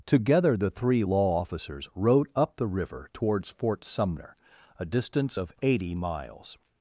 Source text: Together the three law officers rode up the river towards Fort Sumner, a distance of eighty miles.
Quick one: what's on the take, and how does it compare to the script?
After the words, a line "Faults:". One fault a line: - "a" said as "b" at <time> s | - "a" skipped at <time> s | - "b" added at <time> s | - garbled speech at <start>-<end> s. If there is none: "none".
Together the three law officers rode up the river towards Fort Sumner, a distance of eighty miles.
Faults:
none